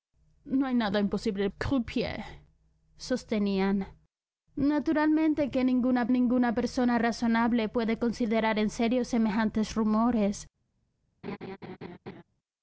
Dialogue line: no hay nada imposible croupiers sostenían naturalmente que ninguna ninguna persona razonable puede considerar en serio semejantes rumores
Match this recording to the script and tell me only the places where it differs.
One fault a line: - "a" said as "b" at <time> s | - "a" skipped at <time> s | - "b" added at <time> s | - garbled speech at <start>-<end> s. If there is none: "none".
none